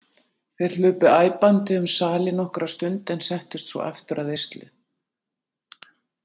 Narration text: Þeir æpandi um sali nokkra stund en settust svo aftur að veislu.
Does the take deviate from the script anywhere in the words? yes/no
yes